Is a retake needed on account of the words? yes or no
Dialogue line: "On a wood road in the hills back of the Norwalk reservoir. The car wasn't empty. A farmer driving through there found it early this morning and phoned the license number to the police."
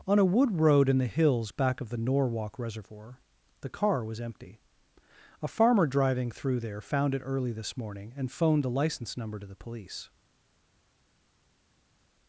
yes